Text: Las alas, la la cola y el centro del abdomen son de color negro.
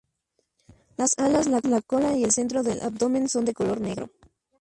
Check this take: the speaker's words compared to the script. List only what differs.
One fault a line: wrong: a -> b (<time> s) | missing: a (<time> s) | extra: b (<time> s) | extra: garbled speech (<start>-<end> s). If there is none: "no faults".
no faults